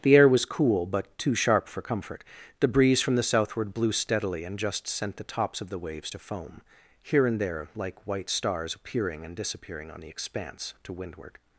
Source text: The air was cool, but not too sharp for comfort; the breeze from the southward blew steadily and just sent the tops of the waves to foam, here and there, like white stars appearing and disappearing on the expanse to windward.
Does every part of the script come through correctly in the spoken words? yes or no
no